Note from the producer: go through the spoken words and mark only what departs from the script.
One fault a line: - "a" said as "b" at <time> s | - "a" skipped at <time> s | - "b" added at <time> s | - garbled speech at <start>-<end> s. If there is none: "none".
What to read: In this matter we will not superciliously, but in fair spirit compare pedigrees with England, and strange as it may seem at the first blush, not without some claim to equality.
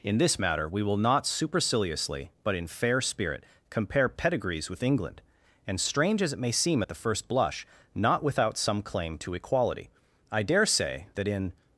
- "I dare say that in" added at 10.3 s